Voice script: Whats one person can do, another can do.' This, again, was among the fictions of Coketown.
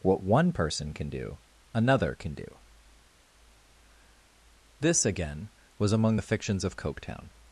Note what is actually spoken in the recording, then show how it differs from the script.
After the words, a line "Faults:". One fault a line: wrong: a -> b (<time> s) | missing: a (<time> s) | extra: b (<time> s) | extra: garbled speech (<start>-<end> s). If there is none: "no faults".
What one person can do, another can do.' This, again, was among the fictions of Coketown.
Faults:
wrong: Whats -> What (0.0 s)